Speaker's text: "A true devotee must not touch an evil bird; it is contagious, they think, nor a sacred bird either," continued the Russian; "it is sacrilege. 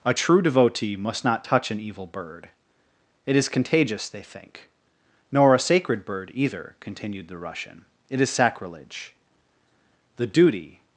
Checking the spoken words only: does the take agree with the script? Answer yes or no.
no